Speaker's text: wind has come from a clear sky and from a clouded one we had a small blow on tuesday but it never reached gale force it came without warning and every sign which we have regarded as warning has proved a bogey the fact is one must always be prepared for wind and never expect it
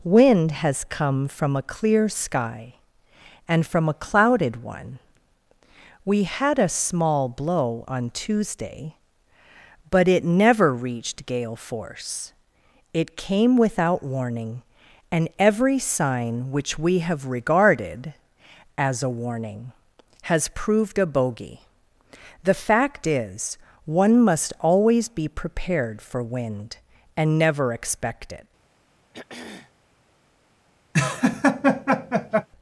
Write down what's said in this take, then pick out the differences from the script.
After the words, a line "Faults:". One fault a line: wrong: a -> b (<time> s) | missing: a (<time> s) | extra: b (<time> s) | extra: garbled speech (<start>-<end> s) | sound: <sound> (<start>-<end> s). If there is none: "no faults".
wind has come from a clear sky and from a clouded one we had a small blow on tuesday but it never reached gale force it came without warning and every sign which we have regarded as a warning has proved a bogey the fact is one must always be prepared for wind and never expect it
Faults:
extra: a (19.0 s)
sound: throat clearing (29.1-29.7 s)
sound: laugh (30.9-32.5 s)